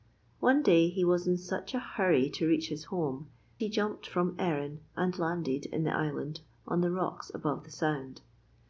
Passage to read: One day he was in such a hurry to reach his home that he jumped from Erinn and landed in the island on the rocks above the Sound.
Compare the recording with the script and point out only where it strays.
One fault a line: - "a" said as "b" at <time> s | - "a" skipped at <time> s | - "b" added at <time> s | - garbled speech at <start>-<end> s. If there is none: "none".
- "that" skipped at 3.3 s